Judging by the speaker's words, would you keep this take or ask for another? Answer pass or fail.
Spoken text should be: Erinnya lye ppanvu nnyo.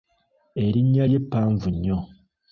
pass